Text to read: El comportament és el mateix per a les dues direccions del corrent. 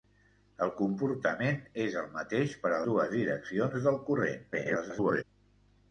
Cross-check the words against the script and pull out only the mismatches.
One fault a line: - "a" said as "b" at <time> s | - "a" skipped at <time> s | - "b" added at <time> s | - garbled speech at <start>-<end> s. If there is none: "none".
- "les" skipped at 2.8 s
- garbled speech at 4.5-5.2 s